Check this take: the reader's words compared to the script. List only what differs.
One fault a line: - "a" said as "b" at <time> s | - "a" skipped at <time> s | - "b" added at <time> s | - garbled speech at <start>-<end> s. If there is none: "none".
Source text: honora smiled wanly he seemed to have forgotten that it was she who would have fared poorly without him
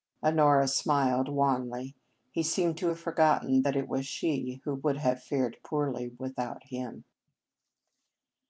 none